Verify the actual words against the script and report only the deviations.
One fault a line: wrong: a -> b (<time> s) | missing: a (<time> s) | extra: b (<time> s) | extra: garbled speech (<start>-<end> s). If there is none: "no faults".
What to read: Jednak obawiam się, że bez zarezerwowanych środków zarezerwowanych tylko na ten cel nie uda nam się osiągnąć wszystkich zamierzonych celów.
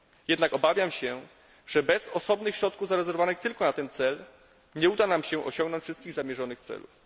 wrong: zarezerwowanych -> osobnych (2.1 s)